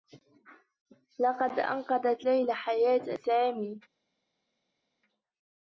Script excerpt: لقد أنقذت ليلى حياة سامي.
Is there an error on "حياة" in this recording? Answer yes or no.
no